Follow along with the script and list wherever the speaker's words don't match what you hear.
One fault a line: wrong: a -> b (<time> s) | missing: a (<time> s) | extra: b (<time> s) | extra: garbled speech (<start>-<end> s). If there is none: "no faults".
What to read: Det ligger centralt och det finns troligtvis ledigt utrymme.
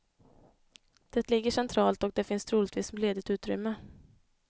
no faults